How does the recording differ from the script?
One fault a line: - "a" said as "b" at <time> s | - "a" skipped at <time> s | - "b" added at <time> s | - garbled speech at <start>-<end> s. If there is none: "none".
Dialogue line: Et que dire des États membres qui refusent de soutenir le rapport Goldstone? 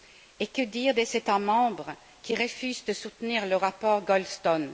none